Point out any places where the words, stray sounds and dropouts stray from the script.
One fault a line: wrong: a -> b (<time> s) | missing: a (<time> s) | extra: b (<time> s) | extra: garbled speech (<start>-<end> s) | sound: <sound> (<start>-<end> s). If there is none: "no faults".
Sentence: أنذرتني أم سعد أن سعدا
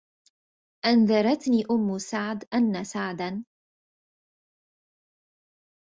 no faults